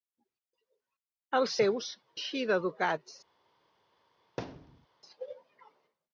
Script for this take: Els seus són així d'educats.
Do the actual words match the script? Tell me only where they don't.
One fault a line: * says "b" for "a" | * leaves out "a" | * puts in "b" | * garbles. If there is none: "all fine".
* leaves out "són"